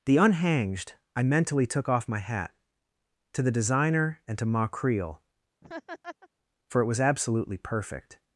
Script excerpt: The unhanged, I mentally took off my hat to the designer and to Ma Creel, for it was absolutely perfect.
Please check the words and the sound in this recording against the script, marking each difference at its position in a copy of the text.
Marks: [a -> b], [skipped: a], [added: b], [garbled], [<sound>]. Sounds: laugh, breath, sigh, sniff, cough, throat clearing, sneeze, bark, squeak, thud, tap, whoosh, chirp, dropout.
The unhanged, I mentally took off my hat to the designer and to Ma Creel, [laugh] for it was absolutely perfect.